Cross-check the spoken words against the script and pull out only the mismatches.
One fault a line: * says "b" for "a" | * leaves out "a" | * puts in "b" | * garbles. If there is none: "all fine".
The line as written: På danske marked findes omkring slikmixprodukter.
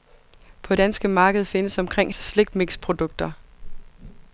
all fine